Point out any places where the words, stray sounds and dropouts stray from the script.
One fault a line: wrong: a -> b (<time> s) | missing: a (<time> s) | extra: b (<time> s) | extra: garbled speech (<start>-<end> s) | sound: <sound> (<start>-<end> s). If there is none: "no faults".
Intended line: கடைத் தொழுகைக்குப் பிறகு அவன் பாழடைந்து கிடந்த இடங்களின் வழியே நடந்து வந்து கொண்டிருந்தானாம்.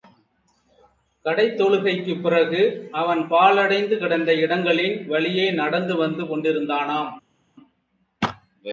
no faults